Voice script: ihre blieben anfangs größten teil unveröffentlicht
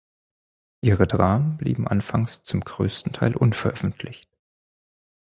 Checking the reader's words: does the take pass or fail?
fail